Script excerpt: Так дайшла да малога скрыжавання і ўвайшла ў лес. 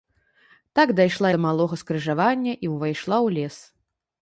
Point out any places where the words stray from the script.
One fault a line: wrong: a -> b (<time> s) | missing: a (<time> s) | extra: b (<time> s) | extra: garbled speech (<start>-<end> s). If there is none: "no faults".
no faults